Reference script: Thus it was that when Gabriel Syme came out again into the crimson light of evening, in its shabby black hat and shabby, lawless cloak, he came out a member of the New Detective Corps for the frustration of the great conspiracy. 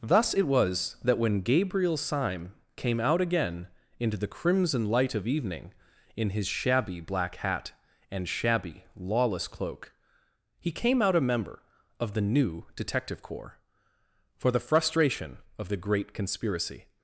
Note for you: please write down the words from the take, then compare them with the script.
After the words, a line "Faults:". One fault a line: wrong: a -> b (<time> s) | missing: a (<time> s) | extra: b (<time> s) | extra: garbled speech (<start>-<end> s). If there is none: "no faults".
Thus it was that when Gabriel Syme came out again into the crimson light of evening, in his shabby black hat and shabby, lawless cloak, he came out a member of the New Detective Corps for the frustration of the great conspiracy.
Faults:
wrong: its -> his (6.3 s)